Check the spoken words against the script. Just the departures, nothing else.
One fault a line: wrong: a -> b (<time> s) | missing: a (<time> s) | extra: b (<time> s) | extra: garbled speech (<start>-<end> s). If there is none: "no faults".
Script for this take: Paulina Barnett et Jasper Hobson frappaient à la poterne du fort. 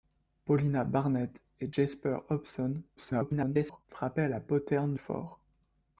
extra: garbled speech (3.0-3.9 s)
missing: du (4.9 s)